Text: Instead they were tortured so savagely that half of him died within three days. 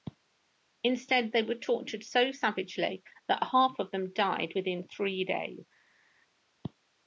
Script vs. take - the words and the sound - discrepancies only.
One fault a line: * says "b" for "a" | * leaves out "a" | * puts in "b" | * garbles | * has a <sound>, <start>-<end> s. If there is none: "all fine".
* says "them" for "him"